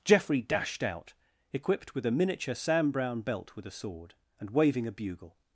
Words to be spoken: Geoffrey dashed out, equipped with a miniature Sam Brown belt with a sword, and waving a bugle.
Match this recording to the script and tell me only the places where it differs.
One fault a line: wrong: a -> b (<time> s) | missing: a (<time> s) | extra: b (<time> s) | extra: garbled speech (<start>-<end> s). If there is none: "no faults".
no faults